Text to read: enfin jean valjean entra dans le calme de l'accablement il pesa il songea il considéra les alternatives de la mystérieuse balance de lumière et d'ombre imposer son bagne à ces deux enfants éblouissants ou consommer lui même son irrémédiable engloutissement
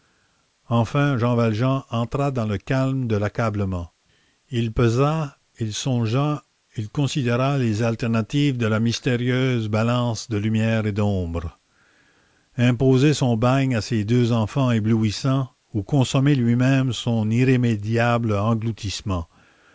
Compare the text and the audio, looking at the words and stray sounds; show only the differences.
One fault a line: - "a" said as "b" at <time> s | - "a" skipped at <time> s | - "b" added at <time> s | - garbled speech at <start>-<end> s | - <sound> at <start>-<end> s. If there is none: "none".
none